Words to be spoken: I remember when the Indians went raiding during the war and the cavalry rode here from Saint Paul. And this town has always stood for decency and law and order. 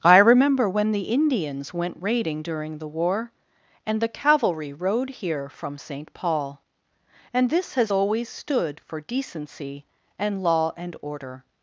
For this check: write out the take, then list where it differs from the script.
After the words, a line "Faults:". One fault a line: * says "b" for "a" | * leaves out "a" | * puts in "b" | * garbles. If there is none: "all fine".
I remember when the Indians went raiding during the war and the cavalry rode here from Saint Paul. And this has always stood for decency and law and order.
Faults:
* leaves out "town"